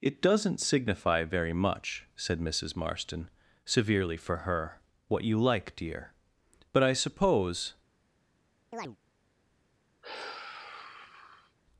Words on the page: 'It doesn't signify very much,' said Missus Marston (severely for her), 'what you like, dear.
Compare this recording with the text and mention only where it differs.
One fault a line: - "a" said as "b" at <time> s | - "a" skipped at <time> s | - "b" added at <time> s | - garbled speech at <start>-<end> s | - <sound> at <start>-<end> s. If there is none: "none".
- "But I suppose" added at 6.7 s
- chirp at 8.7-9.0 s
- sigh at 10.0-11.6 s